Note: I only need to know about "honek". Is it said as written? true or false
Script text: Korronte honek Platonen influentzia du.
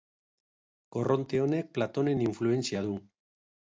true